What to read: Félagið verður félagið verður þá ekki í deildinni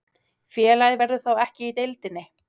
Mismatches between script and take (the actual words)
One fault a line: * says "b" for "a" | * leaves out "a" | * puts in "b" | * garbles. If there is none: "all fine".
* leaves out "félagið verður"